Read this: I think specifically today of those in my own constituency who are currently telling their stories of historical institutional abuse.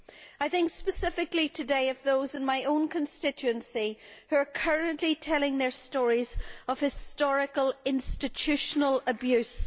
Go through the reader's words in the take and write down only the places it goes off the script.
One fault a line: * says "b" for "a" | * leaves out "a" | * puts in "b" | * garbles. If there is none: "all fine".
all fine